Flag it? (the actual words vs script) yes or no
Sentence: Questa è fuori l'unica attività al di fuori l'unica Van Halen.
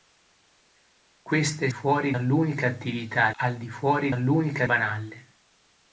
no